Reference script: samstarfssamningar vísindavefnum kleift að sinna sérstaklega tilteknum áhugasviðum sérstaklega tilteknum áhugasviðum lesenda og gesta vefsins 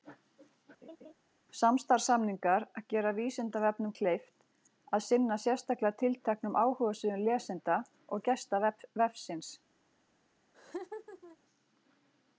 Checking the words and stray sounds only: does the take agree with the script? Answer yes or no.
no